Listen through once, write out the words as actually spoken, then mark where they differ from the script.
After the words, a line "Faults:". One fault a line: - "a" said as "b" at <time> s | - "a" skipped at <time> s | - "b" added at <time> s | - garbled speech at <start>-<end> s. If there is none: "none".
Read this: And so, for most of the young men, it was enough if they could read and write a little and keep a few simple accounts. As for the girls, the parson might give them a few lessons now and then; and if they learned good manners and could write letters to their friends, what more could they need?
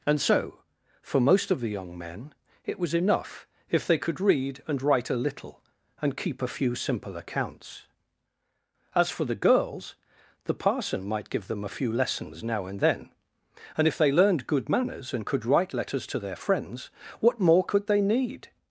And so, for most of the young men, it was enough if they could read and write a little and keep a few simple accounts. As for the girls, the parson might give them a few lessons now and then; and if they learned good manners and could write letters to their friends, what more could they need?
Faults:
none